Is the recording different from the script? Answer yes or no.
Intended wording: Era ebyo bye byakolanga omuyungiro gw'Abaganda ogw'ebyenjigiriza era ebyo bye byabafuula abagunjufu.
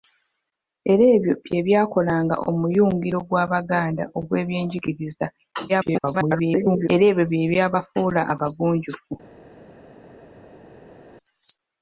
yes